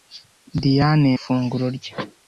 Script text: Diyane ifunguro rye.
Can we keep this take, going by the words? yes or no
yes